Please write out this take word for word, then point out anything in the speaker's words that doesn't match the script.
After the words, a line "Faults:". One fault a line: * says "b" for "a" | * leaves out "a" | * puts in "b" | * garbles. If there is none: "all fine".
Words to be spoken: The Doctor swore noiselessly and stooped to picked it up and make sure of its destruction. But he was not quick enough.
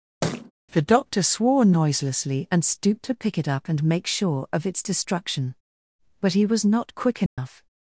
The Doctor swore noiselessly and stooped to pick it up and make sure of its destruction. But he was not quick enough.
Faults:
* says "pick" for "picked"